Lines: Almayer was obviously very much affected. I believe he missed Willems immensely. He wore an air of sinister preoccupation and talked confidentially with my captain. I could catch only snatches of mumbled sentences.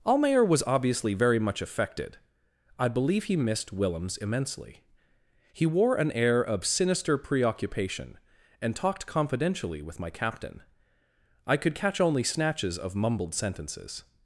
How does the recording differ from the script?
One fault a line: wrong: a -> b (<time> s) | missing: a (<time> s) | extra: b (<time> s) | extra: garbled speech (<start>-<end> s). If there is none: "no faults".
no faults